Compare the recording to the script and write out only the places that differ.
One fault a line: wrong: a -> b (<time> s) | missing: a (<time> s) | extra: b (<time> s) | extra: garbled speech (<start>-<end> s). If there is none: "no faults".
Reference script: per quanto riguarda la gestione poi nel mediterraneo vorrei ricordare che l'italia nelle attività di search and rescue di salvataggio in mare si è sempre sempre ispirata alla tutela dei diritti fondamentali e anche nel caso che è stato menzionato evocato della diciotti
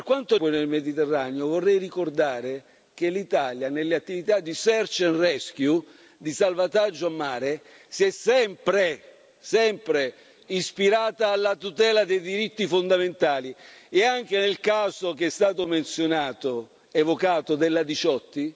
missing: riguarda la gestione (0.3 s)